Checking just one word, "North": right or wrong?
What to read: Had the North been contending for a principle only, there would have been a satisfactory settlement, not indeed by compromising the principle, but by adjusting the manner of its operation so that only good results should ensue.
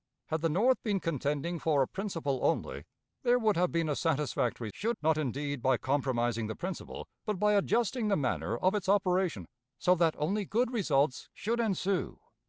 right